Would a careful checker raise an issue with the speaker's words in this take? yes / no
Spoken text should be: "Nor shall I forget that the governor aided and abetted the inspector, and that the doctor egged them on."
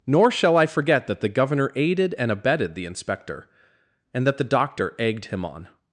yes